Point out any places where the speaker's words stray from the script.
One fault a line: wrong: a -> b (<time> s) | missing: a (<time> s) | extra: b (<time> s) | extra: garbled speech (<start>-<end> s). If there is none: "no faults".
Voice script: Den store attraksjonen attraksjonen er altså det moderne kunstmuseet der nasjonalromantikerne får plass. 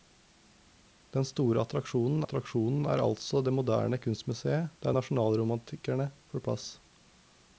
no faults